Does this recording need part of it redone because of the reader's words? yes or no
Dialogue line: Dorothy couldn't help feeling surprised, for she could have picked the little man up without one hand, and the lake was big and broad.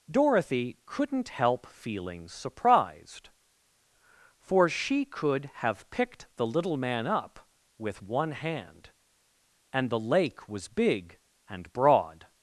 yes